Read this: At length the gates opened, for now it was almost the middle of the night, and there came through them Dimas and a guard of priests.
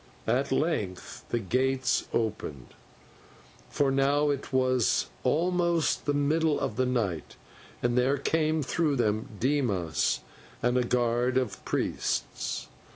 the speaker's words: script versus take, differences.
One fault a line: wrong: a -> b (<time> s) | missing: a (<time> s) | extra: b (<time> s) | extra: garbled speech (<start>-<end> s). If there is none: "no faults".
no faults